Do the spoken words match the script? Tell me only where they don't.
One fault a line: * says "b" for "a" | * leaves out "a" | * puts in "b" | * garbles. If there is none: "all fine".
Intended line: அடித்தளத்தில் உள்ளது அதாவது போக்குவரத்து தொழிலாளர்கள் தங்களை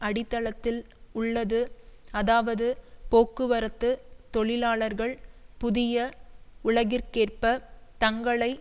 * puts in "புதிய உலகிற்கேற்ப"